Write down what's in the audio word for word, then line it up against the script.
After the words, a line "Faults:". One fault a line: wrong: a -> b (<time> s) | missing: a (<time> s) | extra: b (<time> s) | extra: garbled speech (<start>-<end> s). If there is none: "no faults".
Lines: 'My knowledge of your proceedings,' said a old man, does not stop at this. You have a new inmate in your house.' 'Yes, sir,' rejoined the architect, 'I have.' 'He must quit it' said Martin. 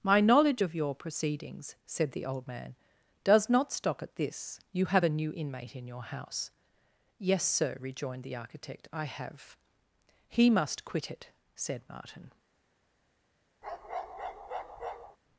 'My knowledge of your proceedings,' said the old man, does not stop at this. You have a new inmate in your house.' 'Yes, sir,' rejoined the architect, 'I have.' 'He must quit it' said Martin.
Faults:
wrong: a -> the (2.1 s)